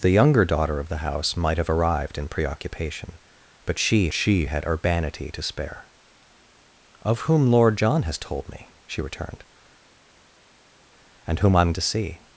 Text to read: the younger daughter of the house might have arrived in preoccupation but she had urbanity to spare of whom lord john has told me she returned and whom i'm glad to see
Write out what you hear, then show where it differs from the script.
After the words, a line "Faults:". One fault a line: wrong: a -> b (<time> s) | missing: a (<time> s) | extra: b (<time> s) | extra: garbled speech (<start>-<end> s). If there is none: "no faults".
the younger daughter of the house might have arrived in preoccupation but she she had urbanity to spare of whom lord john has told me she returned and whom i'm to see
Faults:
extra: she (4.1 s)
missing: glad (11.7 s)